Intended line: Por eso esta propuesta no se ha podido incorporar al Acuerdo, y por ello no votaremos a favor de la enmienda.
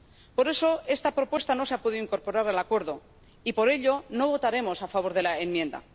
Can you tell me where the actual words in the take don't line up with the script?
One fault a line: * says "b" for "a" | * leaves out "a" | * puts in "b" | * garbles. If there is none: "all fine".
all fine